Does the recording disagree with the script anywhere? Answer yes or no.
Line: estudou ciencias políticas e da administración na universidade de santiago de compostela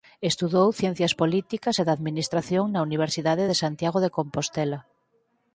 no